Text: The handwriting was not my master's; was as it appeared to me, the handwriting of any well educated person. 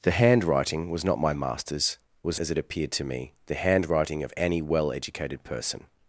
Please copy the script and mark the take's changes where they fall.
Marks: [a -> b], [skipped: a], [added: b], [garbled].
The handwriting was not my master's; was as it appeared to me, the handwriting of any well educated person.